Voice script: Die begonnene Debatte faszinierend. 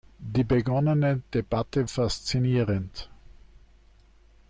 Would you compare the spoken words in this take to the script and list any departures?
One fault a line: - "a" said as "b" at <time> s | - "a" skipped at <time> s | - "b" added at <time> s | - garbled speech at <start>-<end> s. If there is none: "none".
none